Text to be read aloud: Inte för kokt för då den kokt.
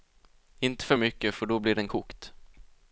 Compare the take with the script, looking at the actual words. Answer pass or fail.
fail